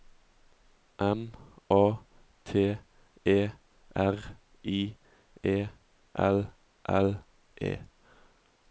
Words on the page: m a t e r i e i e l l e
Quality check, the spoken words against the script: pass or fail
fail